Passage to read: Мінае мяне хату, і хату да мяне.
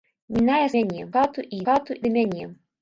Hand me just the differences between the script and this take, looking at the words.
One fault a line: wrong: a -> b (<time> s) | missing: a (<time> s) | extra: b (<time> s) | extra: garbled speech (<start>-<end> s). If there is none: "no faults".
no faults